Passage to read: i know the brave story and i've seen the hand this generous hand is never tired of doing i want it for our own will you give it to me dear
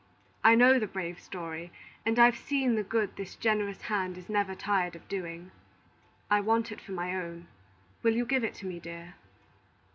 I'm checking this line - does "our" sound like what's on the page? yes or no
no